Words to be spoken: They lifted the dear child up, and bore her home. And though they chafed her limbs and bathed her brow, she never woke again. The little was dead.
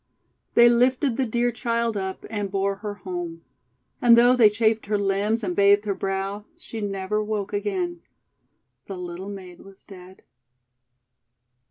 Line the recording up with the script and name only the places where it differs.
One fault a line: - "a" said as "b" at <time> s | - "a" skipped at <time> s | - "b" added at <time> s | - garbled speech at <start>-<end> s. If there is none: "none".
- "maid" added at 9.3 s